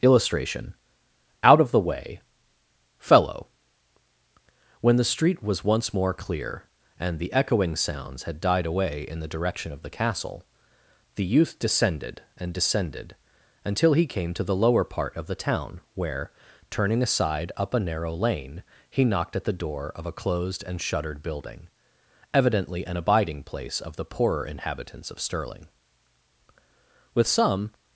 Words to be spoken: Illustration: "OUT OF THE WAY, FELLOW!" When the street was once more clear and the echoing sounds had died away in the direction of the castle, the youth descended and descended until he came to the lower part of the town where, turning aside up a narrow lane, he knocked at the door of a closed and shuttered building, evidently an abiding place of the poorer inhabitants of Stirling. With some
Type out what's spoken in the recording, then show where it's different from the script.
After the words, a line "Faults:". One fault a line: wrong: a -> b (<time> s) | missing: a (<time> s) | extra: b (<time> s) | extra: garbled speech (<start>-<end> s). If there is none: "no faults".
Illustration: "OUT OF THE WAY, FELLOW!" When the street was once more clear and the echoing sounds had died away in the direction of the castle, the youth descended and descended until he came to the lower part of the town where, turning aside up a narrow lane, he knocked at the door of a closed and shuttered building, evidently an abiding place of the poorer inhabitants of Stirling. With some
Faults:
no faults